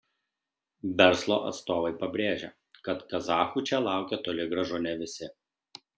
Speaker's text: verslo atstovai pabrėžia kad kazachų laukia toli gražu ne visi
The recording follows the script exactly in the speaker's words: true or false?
false